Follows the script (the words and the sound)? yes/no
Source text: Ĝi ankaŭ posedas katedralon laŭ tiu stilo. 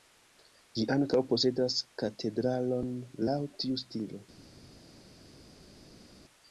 yes